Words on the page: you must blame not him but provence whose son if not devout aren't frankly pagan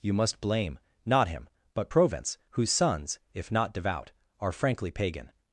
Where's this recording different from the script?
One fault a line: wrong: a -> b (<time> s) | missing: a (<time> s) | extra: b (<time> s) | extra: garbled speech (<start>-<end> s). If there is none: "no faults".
wrong: son -> sons (2.7 s)
wrong: aren't -> are (4.4 s)